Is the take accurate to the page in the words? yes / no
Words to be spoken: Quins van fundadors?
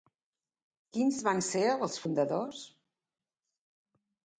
no